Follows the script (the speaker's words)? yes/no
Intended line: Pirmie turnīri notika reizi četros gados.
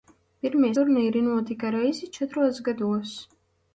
yes